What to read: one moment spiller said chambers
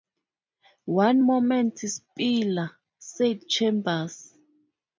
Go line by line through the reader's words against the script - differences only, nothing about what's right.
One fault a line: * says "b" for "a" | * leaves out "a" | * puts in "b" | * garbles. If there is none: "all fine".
all fine